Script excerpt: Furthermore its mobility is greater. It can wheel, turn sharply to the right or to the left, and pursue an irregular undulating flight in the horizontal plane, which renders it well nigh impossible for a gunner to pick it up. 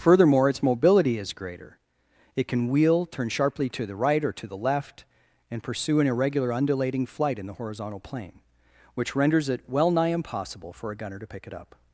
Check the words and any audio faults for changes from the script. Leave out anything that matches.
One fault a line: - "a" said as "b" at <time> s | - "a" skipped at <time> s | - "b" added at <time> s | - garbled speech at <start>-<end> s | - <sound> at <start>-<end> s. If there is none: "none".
none